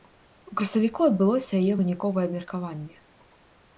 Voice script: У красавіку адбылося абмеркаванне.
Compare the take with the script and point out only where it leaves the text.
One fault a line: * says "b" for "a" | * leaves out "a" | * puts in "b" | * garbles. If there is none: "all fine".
* puts in "яе выніковае"